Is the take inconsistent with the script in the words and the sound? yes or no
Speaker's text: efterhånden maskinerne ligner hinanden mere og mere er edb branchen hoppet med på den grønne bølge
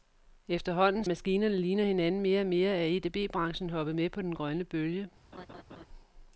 yes